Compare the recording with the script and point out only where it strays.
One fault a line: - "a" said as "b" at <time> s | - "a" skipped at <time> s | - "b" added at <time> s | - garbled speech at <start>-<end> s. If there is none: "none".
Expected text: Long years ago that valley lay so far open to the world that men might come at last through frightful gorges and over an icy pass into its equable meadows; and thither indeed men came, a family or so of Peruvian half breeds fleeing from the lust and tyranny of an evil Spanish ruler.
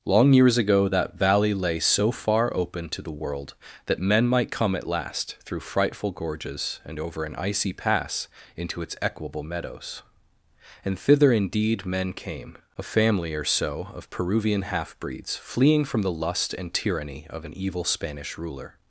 none